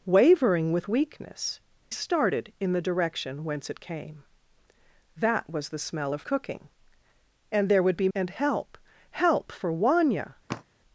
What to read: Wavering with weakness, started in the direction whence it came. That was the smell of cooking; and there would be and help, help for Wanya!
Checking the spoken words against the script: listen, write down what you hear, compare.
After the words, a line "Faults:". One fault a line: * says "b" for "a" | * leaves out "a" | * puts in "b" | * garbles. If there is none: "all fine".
Wavering with weakness, started in the direction whence it came. That was the smell of cooking; and there would be and help, help for Wanya!
Faults:
all fine